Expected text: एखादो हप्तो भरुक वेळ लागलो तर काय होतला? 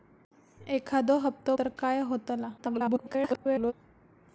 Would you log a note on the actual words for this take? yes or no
yes